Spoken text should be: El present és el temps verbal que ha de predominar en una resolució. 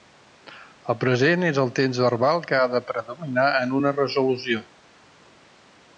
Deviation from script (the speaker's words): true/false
false